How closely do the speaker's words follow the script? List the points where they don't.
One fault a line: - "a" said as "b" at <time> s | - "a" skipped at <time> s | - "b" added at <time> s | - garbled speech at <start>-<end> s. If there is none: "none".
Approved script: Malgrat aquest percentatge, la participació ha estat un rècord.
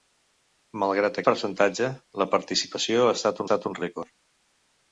- "aquest" skipped at 1.2 s
- "estat" added at 3.5 s